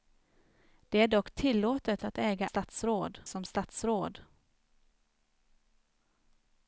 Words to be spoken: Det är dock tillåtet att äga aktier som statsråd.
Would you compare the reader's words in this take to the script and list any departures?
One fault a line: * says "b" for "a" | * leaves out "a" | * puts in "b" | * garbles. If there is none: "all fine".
* says "statsråd" for "aktier"